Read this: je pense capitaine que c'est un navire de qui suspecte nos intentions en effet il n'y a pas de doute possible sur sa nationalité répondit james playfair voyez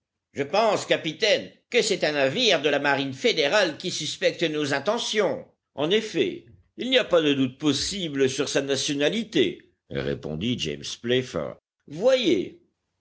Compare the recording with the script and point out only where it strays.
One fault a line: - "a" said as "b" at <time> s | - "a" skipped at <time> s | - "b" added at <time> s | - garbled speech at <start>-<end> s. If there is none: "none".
- "la marine fédérale" added at 2.7 s